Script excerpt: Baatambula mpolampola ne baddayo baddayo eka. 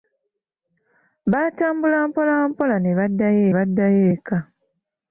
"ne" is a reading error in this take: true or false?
false